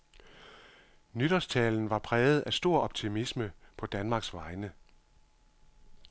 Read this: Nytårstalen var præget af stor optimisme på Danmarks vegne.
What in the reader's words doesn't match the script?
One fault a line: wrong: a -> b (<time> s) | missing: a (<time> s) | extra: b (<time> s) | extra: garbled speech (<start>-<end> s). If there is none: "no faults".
no faults